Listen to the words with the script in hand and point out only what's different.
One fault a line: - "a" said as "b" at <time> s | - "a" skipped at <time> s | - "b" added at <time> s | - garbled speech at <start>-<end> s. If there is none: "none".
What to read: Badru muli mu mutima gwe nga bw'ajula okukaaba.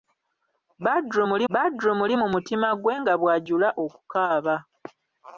- "badru muli" added at 1.5 s